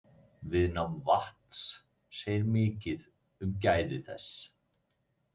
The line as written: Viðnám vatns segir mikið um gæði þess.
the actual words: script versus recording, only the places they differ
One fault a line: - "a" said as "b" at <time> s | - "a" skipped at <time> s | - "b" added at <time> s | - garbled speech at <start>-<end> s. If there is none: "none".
none